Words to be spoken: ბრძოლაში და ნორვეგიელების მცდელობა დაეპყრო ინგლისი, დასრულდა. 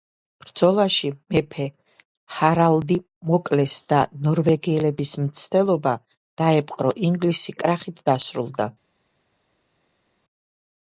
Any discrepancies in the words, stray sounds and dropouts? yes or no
yes